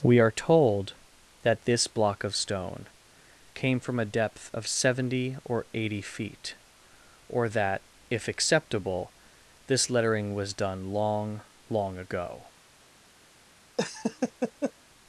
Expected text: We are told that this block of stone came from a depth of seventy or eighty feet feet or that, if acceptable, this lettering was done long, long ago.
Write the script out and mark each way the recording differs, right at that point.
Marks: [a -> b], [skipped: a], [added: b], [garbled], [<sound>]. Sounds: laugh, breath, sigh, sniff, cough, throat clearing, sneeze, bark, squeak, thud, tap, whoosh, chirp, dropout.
We are told that this block of stone came from a depth of seventy or eighty feet [skipped: feet] or that, if acceptable, this lettering was done long, long ago. [laugh]